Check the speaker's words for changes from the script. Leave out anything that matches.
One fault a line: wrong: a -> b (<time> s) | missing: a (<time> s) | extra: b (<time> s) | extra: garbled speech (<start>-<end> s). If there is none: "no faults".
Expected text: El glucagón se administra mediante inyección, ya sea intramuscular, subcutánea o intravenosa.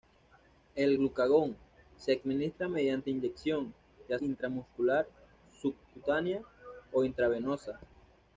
missing: sea (4.2 s)